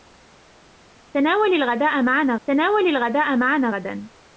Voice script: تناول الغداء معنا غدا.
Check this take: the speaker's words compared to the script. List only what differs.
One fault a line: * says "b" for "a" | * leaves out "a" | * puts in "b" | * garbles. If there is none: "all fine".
* puts in "تناول الغداء معنا"